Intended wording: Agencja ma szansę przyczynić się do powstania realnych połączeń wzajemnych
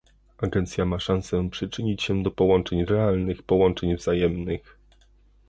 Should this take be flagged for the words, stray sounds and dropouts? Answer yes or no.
yes